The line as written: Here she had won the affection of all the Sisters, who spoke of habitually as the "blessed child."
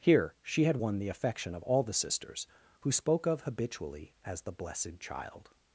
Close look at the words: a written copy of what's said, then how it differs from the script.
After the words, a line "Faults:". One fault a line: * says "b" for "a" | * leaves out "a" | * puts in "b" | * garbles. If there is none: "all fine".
Here she had won the affection of all the Sisters, who spoke of habitually as the "blessed child."
Faults:
all fine